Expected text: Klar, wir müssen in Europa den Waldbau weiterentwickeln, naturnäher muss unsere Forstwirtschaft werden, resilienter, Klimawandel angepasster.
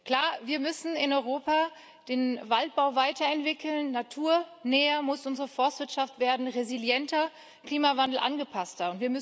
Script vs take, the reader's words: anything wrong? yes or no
no